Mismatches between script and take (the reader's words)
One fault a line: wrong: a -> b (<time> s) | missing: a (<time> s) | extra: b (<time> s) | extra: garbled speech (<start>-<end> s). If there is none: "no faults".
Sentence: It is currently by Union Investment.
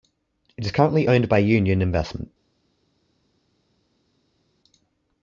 extra: owned (1.1 s)